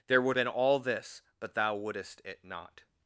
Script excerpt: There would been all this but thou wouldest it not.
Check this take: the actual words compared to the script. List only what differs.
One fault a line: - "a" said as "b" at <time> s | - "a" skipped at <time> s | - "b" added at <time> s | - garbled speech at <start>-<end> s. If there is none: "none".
none